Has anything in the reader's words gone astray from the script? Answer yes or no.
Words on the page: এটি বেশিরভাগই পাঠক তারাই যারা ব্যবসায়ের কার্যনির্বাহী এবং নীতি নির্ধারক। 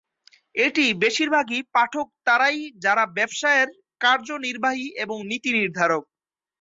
no